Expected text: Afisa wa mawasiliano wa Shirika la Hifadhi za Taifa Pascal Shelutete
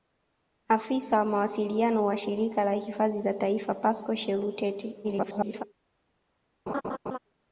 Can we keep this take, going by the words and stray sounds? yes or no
no